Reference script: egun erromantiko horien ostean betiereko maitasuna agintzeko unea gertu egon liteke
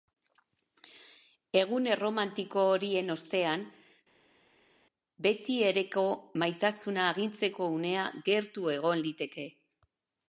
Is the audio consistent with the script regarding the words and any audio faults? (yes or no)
yes